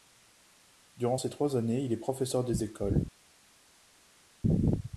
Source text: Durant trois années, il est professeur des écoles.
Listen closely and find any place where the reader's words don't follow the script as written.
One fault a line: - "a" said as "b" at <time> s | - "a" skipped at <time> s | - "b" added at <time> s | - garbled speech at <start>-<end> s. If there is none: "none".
- "ces" added at 1.2 s